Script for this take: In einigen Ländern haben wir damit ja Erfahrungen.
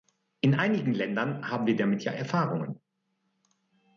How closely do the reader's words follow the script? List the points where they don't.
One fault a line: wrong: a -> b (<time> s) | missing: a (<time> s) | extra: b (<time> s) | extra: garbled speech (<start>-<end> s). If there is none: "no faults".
no faults